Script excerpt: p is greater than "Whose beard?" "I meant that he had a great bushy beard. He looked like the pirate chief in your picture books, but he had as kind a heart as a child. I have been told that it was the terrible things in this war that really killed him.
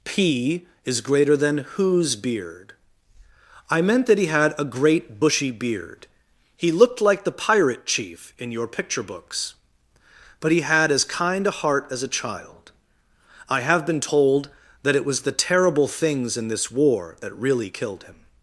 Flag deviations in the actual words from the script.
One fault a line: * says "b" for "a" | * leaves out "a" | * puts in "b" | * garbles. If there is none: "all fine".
all fine